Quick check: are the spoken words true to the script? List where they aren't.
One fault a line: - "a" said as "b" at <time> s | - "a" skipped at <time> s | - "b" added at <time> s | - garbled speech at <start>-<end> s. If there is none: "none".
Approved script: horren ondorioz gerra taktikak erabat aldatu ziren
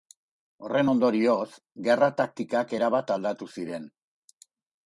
none